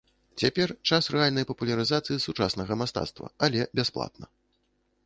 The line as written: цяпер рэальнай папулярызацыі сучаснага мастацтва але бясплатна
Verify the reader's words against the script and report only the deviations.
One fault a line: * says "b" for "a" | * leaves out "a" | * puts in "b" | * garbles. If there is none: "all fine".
* puts in "час"